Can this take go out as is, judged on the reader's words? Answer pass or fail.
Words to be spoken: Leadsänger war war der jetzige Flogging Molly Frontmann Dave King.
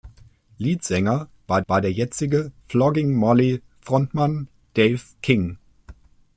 pass